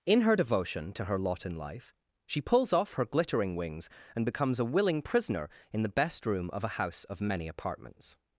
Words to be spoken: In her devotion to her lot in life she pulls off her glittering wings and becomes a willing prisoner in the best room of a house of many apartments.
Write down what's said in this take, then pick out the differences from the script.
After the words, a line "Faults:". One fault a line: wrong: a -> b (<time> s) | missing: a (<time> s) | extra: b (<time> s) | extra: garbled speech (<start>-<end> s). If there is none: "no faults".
In her devotion to her lot in life she pulls off her glittering wings and becomes a willing prisoner in the best room of a house of many apartments.
Faults:
no faults